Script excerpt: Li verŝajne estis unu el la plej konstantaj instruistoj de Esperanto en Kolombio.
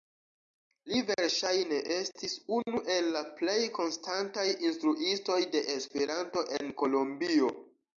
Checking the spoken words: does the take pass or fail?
pass